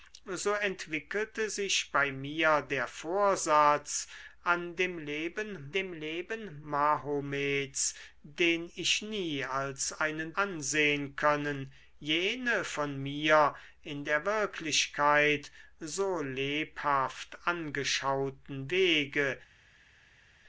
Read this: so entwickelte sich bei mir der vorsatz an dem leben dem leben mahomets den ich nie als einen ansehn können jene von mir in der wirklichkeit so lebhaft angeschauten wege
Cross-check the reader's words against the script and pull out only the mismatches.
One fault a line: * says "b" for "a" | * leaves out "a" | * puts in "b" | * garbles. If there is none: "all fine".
all fine